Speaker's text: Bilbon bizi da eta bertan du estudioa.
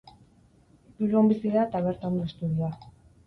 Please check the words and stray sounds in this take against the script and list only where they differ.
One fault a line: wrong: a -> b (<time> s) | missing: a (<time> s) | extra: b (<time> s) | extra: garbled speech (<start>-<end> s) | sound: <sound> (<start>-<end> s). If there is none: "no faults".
no faults